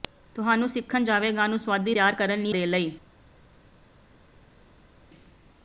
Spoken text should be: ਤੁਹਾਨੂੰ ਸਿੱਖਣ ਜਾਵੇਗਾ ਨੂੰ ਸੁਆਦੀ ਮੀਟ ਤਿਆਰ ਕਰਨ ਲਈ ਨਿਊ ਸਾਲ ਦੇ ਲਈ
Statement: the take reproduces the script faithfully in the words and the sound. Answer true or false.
false